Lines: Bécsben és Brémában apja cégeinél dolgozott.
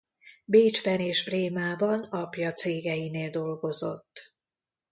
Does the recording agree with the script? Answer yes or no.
yes